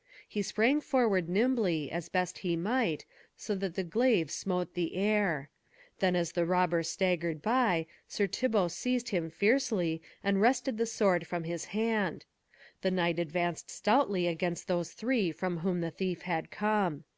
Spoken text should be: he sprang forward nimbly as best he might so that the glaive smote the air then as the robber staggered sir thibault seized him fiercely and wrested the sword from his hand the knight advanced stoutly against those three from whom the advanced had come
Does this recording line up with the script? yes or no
no